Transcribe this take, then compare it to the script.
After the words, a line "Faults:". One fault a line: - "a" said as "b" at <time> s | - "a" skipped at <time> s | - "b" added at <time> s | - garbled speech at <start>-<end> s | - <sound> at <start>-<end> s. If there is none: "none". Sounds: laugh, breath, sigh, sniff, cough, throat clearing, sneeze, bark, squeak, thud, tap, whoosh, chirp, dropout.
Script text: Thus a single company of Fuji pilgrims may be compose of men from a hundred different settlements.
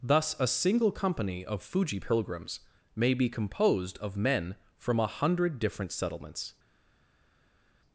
Thus a single company of Fuji pilgrims may be composed of men from a hundred different settlements.
Faults:
- "compose" said as "composed" at 3.3 s